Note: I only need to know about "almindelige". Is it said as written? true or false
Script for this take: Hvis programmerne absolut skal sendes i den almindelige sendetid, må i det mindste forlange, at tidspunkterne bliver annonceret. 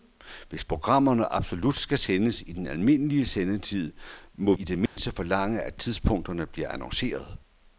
true